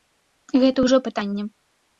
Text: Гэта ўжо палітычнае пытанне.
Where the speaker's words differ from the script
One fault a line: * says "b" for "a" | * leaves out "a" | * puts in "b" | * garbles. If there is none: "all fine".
* leaves out "палітычнае"